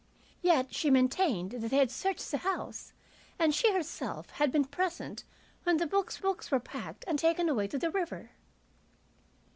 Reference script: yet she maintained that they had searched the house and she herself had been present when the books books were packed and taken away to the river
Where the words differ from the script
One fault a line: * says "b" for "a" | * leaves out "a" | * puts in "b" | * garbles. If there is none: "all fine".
all fine